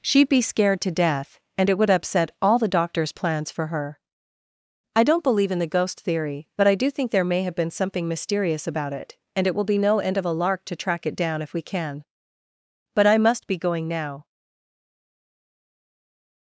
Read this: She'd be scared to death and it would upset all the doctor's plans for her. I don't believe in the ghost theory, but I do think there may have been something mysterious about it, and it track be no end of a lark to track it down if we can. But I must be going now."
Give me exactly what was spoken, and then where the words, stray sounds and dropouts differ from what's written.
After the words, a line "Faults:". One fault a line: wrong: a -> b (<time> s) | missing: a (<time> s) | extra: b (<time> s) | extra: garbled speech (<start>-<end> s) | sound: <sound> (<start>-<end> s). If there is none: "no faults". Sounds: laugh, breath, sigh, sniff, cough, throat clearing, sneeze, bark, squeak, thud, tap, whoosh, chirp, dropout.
She'd be scared to death and it would upset all the doctor's plans for her. I don't believe in the ghost theory, but I do think there may have been something mysterious about it, and it will be no end of a lark to track it down if we can. But I must be going now."
Faults:
wrong: track -> will (9.5 s)